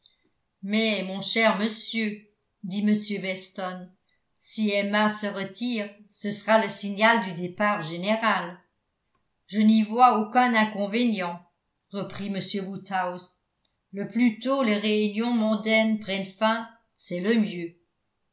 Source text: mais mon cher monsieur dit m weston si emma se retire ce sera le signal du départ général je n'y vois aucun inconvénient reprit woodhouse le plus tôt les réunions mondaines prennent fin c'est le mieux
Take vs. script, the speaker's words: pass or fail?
fail